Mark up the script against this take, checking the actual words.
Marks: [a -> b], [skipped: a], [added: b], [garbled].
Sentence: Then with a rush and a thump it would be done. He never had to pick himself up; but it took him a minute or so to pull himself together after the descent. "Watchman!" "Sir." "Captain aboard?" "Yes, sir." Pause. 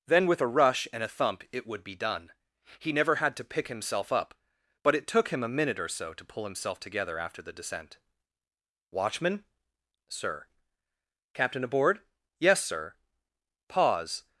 Then with a rush and a thump it would be done. He never had to pick himself up; but it took him a minute or so to pull himself together after the descent. "Watchman!" "Sir." "Captain aboard?" "Yes, sir." Pause.